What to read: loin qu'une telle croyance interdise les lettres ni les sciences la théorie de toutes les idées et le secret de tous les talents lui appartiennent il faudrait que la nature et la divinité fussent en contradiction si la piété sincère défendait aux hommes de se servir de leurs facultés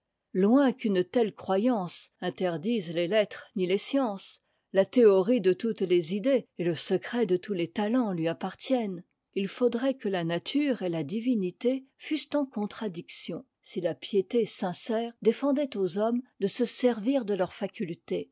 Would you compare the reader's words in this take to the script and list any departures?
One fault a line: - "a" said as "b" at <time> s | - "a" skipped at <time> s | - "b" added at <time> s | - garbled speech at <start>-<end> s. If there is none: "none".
none